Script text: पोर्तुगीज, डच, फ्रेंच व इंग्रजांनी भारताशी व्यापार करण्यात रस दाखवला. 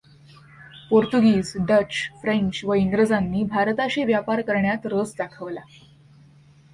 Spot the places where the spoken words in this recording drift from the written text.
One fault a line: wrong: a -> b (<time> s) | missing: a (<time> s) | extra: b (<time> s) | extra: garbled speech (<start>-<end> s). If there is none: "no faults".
no faults